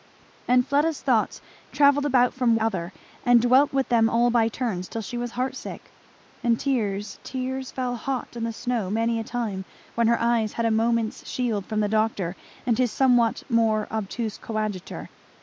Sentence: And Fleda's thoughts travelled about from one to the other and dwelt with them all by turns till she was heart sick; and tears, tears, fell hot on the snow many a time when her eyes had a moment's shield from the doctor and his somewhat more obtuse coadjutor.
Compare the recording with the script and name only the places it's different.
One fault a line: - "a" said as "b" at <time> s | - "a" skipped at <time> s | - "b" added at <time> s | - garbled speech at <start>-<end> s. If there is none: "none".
- "one to the" skipped at 2.5 s